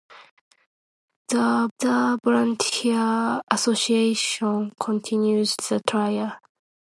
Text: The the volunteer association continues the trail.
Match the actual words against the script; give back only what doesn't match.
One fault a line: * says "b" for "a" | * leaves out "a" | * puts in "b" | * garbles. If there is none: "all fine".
all fine